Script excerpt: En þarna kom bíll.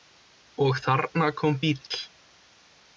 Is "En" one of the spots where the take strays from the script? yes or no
yes